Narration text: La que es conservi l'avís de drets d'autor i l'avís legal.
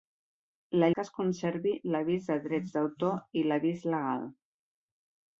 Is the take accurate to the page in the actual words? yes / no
yes